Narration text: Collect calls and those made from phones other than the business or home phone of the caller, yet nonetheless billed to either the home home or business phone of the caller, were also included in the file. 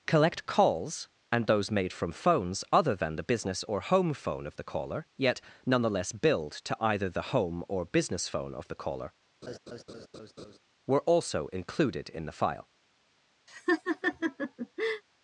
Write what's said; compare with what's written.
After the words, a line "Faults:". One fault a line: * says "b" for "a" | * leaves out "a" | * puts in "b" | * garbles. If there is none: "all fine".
Collect calls and those made from phones other than the business or home phone of the caller, yet nonetheless billed to either the home or business phone of the caller, were also included in the file.
Faults:
* leaves out "home"